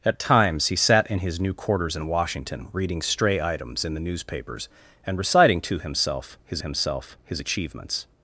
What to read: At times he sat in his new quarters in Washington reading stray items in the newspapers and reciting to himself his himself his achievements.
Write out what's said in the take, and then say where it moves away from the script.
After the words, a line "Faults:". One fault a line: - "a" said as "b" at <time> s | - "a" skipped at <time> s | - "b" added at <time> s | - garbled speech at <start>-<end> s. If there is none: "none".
At times he sat in his new quarters in Washington reading stray items in the newspapers and reciting to himself his himself his achievements.
Faults:
none